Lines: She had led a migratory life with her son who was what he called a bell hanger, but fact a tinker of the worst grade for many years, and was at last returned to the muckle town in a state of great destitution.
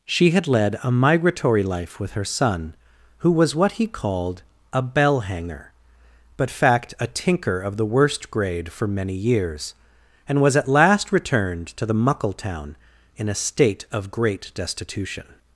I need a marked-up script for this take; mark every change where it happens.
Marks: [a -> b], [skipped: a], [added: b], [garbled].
She had led a migratory life with her son who was what he called a bell hanger, but fact a tinker of the worst grade for many years, and was at last returned to the muckle town in a state of great destitution.